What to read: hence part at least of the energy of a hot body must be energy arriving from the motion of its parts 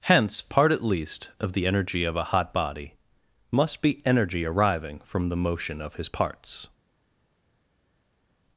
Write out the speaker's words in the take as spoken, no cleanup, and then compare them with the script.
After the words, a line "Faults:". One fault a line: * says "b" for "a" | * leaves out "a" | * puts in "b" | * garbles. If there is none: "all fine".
hence part at least of the energy of a hot body must be energy arriving from the motion of his parts
Faults:
* says "his" for "its"